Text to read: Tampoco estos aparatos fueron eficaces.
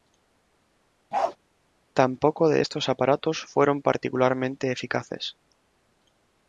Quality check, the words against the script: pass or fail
fail